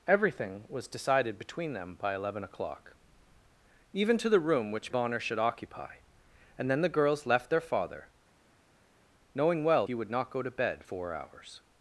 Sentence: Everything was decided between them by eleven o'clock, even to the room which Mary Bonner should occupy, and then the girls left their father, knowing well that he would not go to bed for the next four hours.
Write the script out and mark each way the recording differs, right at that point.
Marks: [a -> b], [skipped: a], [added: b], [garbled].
Everything was decided between them by eleven o'clock, even to the room which [skipped: Mary] Bonner should occupy, and then the girls left their father, knowing well [skipped: that] he would not go to bed [skipped: for the next] four hours.